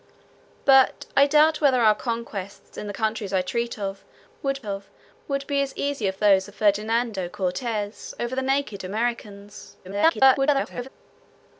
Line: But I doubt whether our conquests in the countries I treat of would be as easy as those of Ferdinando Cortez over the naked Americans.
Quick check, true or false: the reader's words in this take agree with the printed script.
false